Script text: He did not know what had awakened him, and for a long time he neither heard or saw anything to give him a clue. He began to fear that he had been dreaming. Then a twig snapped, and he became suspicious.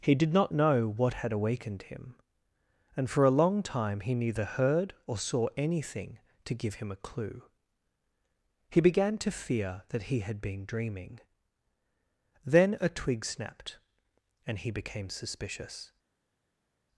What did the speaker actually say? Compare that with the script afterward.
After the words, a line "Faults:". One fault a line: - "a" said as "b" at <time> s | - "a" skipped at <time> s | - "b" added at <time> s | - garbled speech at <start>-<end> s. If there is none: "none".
He did not know what had awakened him, and for a long time he neither heard or saw anything to give him a clue. He began to fear that he had been dreaming. Then a twig snapped, and he became suspicious.
Faults:
none